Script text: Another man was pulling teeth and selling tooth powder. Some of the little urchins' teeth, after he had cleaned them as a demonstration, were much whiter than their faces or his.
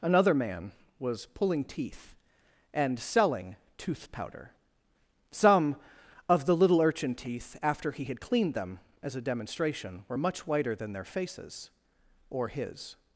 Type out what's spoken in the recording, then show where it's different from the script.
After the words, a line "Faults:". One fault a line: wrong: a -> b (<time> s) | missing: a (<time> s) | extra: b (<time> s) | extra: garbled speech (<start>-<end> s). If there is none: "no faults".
Another man was pulling teeth and selling tooth powder. Some of the little urchin' teeth, after he had cleaned them as a demonstration, were much whiter than their faces or his.
Faults:
wrong: urchins -> urchin (6.8 s)